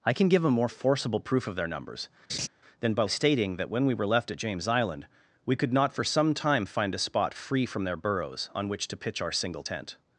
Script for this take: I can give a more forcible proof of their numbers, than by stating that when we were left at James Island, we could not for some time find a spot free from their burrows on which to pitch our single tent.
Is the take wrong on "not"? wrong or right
right